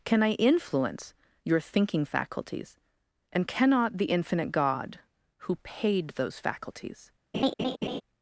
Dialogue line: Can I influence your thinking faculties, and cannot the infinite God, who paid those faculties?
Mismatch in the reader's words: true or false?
false